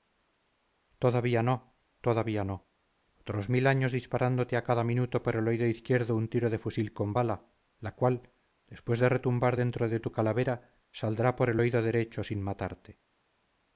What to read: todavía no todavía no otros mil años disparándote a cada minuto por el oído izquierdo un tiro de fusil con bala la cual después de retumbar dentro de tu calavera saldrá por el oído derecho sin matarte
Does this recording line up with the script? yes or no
yes